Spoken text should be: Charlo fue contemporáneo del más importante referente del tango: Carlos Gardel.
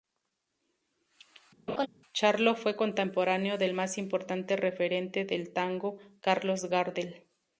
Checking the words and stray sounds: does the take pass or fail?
fail